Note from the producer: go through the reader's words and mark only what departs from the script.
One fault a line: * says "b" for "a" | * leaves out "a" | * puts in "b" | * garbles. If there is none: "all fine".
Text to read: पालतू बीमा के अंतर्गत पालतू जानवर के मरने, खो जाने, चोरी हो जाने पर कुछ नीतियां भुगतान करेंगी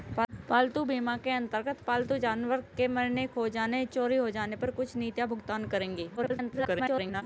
* garbles